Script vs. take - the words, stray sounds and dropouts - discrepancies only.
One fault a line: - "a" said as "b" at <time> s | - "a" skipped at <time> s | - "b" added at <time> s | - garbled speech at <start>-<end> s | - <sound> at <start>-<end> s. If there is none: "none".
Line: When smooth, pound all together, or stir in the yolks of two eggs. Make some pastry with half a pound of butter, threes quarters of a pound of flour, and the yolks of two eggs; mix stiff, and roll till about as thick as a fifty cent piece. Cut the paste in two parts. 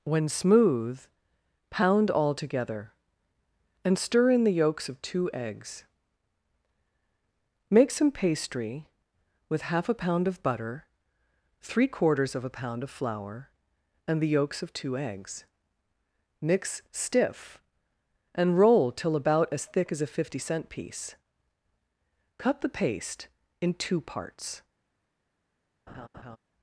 - "or" said as "and" at 3.9 s
- "threes" said as "three" at 11.6 s
- laugh at 25.9-26.4 s